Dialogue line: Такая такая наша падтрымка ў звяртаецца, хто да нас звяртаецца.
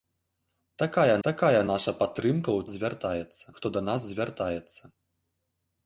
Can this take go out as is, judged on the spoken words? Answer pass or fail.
pass